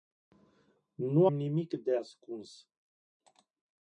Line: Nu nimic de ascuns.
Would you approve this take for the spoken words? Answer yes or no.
yes